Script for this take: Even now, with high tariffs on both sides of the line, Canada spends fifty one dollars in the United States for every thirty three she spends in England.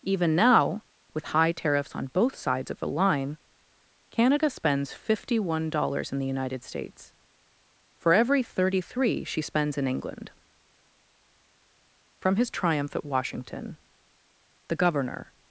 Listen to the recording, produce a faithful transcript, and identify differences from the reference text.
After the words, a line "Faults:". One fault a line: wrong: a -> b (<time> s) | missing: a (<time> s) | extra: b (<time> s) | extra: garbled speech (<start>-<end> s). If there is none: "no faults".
Even now, with high tariffs on both sides of the line, Canada spends fifty one dollars in the United States for every thirty three she spends in England. From his triumph at Washington the governor
Faults:
extra: From his triumph at Washington the governor (12.2 s)